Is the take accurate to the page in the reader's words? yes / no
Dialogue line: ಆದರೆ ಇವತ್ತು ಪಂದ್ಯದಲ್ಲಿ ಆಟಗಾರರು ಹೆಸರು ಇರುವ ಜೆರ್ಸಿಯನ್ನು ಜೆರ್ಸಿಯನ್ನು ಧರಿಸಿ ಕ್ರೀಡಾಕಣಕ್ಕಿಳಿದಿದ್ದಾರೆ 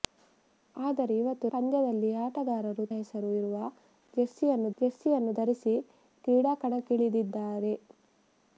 yes